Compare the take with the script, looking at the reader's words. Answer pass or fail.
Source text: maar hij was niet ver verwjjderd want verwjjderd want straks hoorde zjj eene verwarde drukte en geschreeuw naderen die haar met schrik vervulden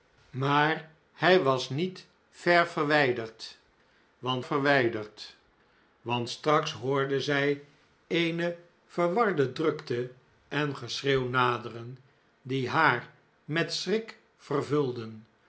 pass